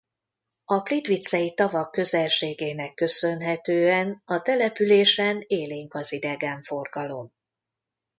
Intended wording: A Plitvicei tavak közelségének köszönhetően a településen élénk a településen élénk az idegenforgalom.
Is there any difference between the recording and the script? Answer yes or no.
yes